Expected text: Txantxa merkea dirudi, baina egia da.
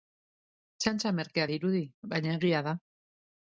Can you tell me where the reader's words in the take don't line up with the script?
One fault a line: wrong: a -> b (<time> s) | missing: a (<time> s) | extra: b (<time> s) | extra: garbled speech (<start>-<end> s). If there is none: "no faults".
no faults